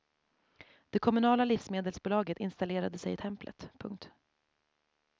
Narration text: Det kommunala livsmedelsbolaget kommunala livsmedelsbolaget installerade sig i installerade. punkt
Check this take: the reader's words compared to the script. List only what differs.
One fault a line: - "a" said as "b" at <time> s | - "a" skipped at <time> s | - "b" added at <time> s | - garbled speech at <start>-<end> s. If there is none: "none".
- "kommunala livsmedelsbolaget" skipped at 2.4 s
- "installerade" said as "templet" at 3.1 s